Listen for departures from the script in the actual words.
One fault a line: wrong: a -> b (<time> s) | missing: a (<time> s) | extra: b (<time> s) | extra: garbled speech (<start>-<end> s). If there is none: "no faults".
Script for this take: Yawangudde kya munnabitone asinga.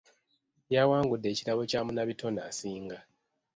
extra: ekirabo (1.3 s)